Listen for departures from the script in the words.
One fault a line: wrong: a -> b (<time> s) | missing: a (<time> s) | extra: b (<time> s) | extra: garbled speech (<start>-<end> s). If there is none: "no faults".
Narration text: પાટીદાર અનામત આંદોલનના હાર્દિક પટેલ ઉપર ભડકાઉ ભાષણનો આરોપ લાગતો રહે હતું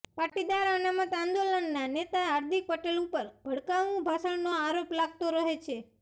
extra: નેતા (1.9 s)
wrong: હતું -> છે (5.6 s)